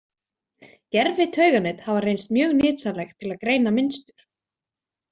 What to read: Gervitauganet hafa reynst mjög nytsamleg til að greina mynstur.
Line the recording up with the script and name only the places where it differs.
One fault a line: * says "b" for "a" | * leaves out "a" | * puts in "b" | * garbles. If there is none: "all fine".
all fine